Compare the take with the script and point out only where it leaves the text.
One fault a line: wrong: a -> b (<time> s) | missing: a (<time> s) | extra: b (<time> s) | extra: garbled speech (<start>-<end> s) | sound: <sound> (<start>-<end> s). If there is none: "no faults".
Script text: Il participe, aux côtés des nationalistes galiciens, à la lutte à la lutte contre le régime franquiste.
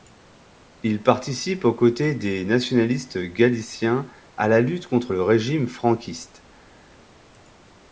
missing: à la lutte (4.9 s)